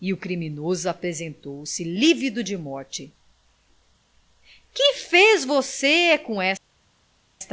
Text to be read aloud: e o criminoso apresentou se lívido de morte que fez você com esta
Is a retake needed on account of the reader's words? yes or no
no